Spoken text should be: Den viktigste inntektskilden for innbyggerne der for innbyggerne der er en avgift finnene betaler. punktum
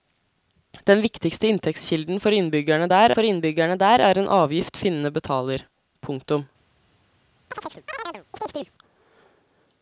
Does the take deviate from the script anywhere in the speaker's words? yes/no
no